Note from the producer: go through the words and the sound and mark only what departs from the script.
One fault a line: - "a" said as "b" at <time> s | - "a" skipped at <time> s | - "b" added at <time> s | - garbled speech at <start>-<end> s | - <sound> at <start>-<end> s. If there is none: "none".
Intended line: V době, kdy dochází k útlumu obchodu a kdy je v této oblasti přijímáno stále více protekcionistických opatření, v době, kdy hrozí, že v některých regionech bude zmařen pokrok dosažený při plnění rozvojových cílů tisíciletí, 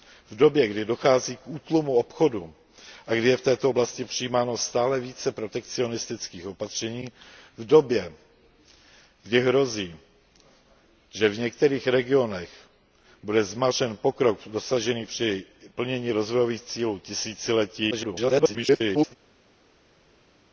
- garbled speech at 17.9-19.2 s